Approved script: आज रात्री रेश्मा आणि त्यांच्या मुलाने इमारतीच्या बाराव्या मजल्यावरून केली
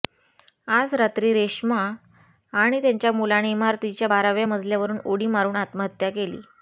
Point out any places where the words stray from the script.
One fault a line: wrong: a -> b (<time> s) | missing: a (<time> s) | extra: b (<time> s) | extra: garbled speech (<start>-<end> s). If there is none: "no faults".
extra: उडी मारून आत्महत्या (5.0 s)